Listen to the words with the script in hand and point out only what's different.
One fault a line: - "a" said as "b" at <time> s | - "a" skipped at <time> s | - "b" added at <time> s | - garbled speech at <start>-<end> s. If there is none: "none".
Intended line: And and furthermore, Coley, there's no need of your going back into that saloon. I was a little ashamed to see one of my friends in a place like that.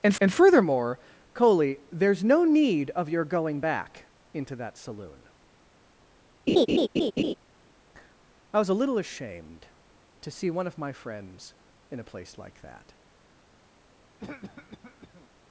none